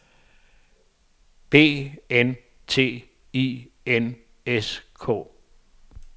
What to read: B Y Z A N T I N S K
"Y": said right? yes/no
no